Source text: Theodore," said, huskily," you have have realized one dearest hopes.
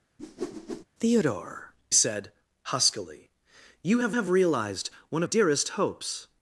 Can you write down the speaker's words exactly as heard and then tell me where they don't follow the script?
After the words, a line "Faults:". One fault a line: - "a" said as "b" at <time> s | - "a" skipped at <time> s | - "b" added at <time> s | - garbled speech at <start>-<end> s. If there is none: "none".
Theodore," said, huskily," you have have realized one dearest hopes.
Faults:
none